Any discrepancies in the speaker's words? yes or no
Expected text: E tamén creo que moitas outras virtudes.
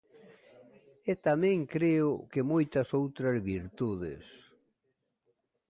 no